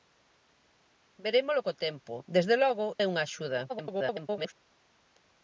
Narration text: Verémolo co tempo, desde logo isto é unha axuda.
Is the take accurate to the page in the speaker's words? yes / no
no